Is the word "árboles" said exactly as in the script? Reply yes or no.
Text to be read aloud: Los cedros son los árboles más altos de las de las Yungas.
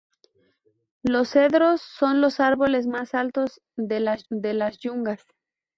yes